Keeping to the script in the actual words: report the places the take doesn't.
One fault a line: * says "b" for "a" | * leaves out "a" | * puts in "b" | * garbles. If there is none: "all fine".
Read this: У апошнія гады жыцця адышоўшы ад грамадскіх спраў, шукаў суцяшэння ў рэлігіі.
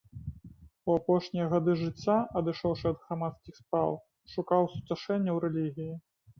all fine